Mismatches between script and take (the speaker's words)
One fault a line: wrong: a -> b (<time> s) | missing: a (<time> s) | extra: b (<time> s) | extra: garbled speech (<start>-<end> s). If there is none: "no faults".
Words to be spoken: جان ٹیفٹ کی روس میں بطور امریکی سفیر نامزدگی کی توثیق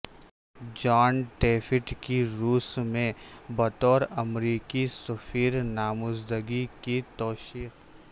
no faults